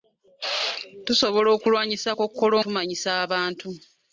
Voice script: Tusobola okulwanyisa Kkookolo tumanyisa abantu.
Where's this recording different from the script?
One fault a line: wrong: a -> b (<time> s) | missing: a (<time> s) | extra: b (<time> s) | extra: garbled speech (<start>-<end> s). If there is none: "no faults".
no faults